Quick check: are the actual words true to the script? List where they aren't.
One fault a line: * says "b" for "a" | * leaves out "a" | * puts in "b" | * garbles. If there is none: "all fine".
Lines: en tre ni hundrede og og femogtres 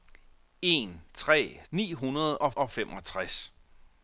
all fine